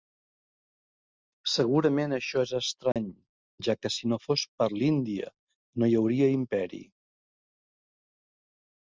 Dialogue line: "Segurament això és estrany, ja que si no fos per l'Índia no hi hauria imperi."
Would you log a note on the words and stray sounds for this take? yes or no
yes